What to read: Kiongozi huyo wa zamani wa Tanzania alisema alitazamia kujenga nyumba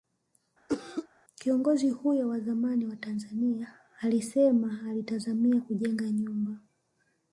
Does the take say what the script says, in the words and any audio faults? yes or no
no